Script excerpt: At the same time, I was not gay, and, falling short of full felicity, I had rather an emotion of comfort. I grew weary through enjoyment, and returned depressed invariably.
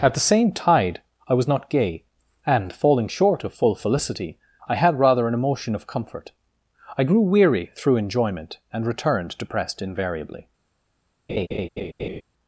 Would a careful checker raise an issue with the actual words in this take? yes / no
yes